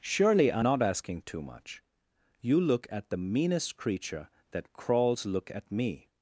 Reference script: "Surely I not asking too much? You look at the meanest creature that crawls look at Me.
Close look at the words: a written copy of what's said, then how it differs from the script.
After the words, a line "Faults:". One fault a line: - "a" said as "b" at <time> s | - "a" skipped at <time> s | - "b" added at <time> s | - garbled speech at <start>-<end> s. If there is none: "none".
"Surely I not asking too much? You look at the meanest creature that crawls look at Me.
Faults:
none